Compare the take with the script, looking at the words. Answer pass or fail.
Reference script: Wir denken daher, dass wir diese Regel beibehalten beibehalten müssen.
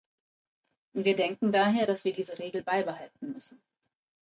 fail